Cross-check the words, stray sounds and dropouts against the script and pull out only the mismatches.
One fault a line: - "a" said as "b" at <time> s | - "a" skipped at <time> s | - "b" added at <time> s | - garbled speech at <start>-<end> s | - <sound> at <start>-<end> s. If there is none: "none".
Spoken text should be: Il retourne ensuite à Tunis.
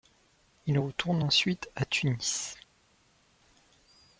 none